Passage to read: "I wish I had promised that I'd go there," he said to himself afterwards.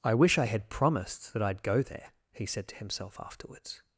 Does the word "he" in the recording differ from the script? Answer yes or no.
no